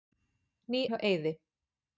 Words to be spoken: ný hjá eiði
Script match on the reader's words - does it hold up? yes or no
yes